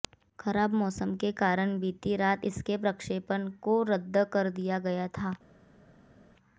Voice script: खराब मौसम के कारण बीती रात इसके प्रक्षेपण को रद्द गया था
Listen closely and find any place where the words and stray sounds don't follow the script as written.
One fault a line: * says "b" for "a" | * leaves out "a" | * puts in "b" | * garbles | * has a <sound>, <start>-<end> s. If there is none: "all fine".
* puts in "कर दिया"